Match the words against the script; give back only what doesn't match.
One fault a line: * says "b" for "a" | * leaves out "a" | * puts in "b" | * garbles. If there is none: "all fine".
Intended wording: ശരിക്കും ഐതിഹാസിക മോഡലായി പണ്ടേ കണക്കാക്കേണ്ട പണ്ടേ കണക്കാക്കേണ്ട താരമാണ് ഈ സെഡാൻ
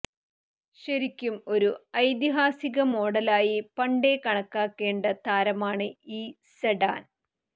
* puts in "ഒരു"
* leaves out "പണ്ടേ കണക്കാക്കേണ്ട"